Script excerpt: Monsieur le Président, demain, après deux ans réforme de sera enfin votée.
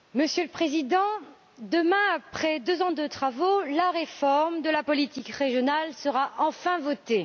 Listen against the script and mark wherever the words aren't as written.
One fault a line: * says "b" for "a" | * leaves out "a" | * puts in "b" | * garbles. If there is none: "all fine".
* puts in "de travaux la"
* puts in "la politique régionale"